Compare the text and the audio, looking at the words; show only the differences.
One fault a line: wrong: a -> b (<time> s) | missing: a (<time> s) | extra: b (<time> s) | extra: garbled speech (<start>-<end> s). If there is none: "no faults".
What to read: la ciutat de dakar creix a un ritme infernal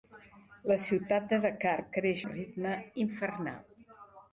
missing: a (2.2 s)